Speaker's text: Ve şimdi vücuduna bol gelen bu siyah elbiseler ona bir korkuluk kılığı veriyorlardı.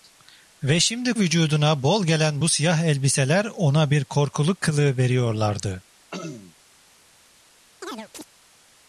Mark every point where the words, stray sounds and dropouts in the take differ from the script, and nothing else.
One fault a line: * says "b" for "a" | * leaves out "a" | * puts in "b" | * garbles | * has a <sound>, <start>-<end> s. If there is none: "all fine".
* has a throat clearing, 6.1-6.6 s
* has a chirp, 7.8-8.3 s